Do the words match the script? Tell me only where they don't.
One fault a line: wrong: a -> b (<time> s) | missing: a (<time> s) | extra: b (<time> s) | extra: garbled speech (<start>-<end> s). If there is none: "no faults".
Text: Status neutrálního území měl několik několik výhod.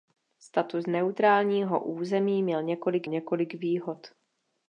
no faults